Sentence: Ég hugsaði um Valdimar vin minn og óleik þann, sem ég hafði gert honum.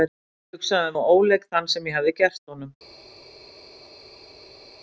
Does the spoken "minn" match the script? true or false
false